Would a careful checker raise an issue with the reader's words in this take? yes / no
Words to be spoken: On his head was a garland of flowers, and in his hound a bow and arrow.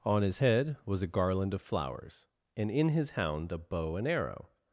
no